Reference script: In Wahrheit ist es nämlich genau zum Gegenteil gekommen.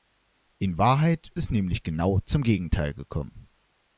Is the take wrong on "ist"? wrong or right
wrong